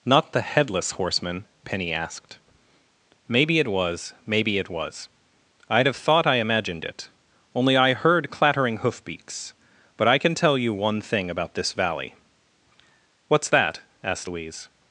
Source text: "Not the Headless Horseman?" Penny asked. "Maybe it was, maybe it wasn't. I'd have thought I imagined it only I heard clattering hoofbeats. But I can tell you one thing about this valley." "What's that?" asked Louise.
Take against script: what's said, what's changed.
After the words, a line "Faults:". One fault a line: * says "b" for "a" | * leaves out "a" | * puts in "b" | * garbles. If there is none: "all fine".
"Not the Headless Horseman?" Penny asked. "Maybe it was, maybe it was. I'd have thought I imagined it only I heard clattering hoofbeats. But I can tell you one thing about this valley." "What's that?" asked Louise.
Faults:
* says "was" for "wasn't"